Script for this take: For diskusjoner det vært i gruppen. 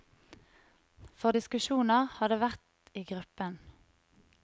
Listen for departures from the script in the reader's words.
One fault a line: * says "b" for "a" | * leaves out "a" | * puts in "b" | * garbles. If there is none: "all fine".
* puts in "har"